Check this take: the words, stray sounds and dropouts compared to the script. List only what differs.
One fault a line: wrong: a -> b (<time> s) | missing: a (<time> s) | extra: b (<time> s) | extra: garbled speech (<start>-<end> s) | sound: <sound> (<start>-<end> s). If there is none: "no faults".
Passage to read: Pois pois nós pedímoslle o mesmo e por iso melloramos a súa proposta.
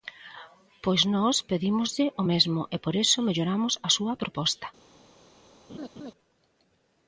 missing: pois (1.0 s)
sound: laugh (5.7-6.1 s)